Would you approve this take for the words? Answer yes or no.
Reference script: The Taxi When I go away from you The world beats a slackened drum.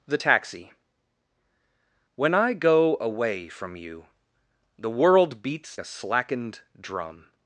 yes